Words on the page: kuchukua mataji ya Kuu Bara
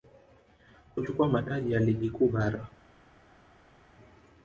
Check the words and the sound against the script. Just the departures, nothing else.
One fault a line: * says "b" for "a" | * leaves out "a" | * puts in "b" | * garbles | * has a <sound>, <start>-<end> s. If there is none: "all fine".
* puts in "Ligi"